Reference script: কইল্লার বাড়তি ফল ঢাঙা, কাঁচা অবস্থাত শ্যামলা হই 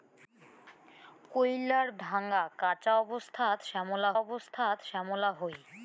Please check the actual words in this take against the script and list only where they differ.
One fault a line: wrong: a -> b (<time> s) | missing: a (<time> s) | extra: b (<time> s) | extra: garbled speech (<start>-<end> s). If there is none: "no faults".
wrong: বাড়তি ফল ঢাঙা কাঁচা -> ঢাঙা কাঁচা অবস্থাত শ্যামলা (2.0 s)